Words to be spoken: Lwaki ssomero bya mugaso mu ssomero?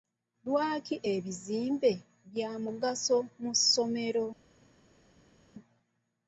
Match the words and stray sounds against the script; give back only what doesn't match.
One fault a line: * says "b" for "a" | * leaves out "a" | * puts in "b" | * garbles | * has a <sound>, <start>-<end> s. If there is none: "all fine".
* says "ebizimbe" for "ssomero"